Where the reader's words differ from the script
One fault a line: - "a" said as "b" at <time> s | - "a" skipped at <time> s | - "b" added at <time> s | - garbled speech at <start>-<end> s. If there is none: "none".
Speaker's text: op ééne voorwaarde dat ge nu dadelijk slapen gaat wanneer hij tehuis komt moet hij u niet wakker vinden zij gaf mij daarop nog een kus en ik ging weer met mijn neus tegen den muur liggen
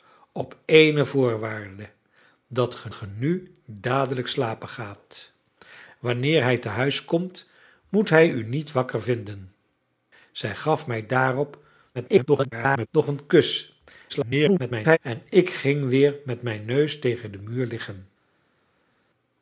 - "ge" added at 2.9 s
- garbled speech at 11.9-12.9 s
- garbled speech at 14.1-15.0 s